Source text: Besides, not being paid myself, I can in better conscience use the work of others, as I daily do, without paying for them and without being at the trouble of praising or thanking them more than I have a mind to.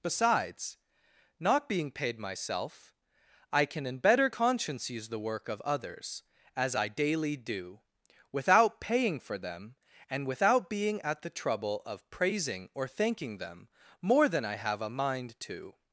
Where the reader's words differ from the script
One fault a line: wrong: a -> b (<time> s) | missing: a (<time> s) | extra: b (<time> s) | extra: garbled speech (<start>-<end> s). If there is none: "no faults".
no faults